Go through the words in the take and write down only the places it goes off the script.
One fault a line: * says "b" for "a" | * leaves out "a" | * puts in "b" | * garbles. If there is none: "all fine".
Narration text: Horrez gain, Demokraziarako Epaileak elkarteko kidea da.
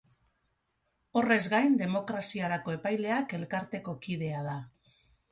all fine